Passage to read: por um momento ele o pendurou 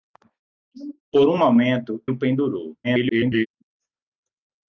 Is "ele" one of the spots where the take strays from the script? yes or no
yes